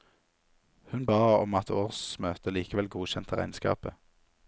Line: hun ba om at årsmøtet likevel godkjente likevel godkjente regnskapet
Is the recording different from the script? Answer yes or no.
yes